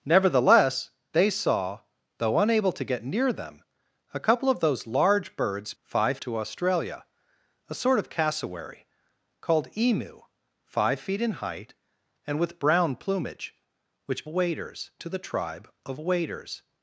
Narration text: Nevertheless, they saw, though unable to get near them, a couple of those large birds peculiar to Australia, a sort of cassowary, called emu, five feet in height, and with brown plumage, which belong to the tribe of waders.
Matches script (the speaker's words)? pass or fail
fail